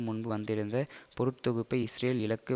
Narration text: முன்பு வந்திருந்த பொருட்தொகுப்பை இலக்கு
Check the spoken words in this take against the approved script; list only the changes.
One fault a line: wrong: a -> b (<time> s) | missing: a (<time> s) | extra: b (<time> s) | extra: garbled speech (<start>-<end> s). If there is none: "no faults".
extra: இஸ்ரேல் (1.8 s)